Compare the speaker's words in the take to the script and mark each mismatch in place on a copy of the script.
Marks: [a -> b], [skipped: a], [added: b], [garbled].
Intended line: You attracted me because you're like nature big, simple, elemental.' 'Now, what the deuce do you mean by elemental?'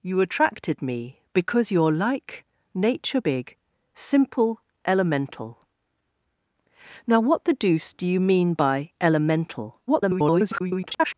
You attracted me because you're like nature big, simple, elemental.' 'Now, what the deuce do you mean by elemental?' [garbled]